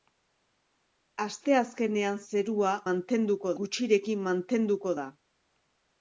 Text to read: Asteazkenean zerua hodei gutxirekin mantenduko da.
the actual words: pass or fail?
fail